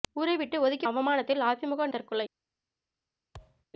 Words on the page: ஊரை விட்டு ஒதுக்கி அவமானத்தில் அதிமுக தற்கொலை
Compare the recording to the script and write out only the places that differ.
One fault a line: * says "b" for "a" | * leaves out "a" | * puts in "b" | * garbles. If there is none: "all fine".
all fine